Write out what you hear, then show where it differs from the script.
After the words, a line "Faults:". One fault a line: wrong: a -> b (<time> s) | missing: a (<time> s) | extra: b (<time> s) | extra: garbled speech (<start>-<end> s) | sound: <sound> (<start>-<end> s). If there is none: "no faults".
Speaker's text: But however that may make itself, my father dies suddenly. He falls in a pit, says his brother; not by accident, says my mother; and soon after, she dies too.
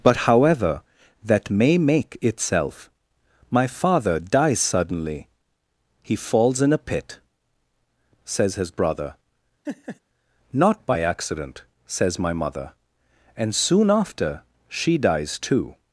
But however that may make itself, my father dies suddenly. He falls in a pit, says his brother; not by accident, says my mother; and soon after, she dies too.
Faults:
sound: laugh (9.6-10.0 s)